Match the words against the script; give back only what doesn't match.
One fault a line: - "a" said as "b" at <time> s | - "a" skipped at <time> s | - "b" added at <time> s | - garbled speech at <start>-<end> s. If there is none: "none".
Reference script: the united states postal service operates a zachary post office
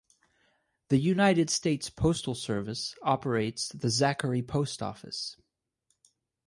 - "a" said as "the" at 3.7 s